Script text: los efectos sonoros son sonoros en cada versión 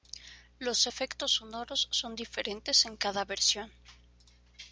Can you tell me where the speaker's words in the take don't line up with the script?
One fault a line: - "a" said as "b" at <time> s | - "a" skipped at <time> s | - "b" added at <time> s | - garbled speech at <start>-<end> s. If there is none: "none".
- "sonoros" said as "diferentes" at 2.2 s